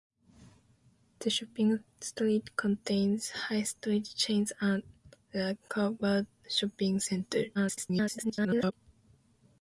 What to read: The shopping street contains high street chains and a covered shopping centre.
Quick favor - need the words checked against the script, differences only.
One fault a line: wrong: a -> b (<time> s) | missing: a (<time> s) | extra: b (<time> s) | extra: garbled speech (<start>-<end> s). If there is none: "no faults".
extra: garbled speech (7.5-8.7 s)